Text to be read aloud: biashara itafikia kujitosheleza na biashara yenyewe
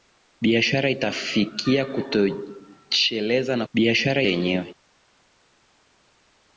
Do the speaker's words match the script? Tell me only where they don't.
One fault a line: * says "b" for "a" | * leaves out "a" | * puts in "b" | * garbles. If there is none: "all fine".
all fine